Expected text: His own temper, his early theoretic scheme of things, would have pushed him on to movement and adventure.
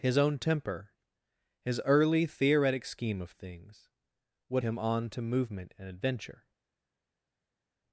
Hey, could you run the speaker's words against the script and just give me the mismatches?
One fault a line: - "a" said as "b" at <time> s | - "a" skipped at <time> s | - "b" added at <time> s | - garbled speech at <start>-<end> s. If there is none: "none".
- "have pushed" skipped at 4.6 s